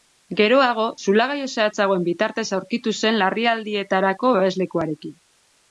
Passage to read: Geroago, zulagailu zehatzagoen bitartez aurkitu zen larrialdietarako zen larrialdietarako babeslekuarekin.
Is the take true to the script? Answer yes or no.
no